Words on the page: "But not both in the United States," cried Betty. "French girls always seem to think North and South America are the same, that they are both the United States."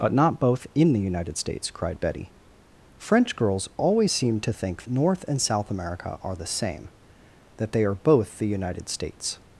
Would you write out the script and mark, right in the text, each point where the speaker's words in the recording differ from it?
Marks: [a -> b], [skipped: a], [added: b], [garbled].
"But not both in the United States," cried Betty. "French girls always seem to think North and South America are the same, that they are both the United States."